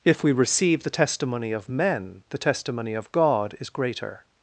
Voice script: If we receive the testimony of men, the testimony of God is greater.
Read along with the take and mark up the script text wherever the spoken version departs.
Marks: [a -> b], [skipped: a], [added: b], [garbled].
If we receive the testimony of men, the testimony of God is greater.